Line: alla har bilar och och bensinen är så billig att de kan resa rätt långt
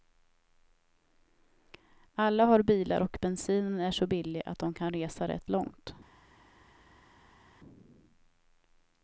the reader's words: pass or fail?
fail